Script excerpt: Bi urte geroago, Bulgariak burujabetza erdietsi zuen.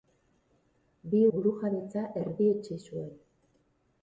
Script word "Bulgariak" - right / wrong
wrong